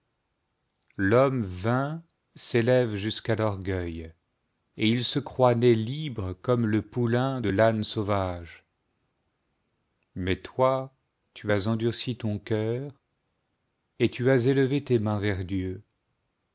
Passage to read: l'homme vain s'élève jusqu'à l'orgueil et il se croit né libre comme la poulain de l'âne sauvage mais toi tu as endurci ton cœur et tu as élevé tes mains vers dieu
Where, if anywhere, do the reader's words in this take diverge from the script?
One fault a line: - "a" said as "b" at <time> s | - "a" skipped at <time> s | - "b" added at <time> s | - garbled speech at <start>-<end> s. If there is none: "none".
- "la" said as "le" at 6.7 s